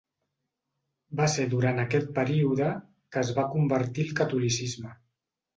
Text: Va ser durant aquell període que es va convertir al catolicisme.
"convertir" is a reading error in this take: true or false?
false